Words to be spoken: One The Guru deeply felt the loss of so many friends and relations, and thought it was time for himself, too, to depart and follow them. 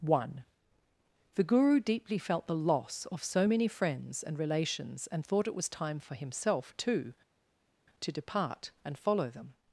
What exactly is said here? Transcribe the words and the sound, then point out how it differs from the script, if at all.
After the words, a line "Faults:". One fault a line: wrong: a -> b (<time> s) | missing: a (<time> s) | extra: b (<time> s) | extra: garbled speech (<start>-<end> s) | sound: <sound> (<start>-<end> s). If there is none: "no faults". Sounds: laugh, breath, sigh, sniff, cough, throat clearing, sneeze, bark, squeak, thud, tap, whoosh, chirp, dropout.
One The Guru deeply felt the loss of so many friends and relations, and thought it was time for himself, too, to depart and follow them.
Faults:
no faults